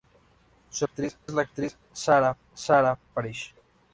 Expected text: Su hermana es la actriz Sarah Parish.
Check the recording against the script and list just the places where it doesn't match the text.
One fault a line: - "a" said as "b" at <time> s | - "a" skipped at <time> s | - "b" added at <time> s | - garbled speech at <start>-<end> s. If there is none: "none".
- "hermana" said as "actriz" at 0.8 s
- "Sarah" added at 2.5 s